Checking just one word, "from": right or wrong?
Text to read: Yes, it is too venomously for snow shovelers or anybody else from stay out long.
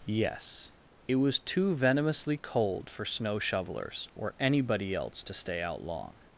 wrong